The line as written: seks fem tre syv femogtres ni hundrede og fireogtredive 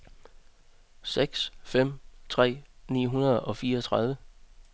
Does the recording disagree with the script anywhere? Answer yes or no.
yes